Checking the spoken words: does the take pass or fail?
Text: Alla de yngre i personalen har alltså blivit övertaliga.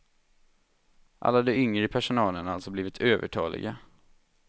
pass